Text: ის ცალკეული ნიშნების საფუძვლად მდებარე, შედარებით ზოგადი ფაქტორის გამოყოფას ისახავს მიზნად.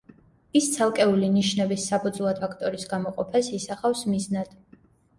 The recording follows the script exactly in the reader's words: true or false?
false